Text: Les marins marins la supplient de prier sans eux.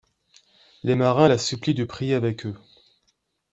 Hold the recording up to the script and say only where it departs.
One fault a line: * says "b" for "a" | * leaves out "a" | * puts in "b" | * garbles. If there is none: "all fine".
* leaves out "marins"
* says "avec" for "sans"